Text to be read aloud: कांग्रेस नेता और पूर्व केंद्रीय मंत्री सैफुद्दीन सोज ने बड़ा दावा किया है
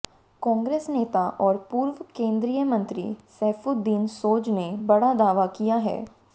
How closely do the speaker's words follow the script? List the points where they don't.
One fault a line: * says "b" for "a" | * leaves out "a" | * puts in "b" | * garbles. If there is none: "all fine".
all fine